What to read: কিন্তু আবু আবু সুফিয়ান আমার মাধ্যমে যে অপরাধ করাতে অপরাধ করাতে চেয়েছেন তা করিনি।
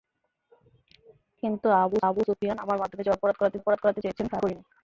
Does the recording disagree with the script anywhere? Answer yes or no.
no